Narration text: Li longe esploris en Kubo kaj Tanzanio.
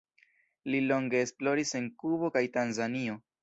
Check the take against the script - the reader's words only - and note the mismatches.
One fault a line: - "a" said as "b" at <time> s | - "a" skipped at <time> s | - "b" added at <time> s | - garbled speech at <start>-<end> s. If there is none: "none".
none